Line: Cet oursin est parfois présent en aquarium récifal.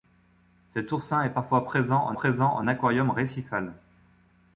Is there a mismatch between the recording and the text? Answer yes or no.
yes